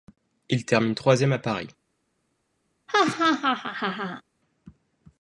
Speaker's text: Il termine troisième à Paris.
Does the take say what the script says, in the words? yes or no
yes